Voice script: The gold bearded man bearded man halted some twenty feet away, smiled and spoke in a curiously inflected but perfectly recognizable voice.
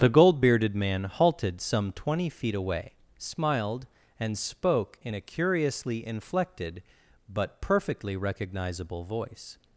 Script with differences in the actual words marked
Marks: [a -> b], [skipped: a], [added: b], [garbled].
The gold bearded man [skipped: bearded man] halted some twenty feet away, smiled and spoke in a curiously inflected but perfectly recognizable voice.